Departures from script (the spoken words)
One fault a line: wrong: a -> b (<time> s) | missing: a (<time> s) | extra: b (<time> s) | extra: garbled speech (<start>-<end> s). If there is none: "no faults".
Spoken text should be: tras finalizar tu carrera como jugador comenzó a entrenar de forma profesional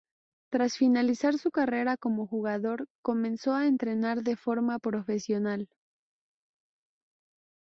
wrong: tu -> su (1.4 s)